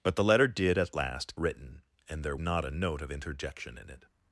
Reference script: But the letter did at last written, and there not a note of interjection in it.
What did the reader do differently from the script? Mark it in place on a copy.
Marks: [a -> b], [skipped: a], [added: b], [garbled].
But the letter did at last written, and there not a note of interjection in it.